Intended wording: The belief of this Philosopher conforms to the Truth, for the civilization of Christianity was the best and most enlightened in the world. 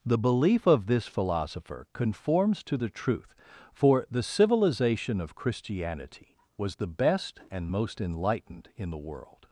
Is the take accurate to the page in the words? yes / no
yes